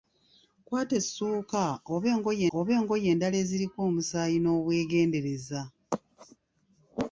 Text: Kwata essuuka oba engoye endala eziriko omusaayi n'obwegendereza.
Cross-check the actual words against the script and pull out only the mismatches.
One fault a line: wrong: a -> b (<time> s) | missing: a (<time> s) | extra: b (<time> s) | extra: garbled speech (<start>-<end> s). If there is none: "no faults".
extra: oba engoye (2.6 s)